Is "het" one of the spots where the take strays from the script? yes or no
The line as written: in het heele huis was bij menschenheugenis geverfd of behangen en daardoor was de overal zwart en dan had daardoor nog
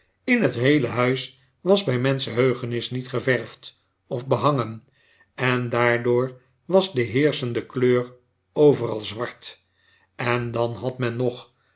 no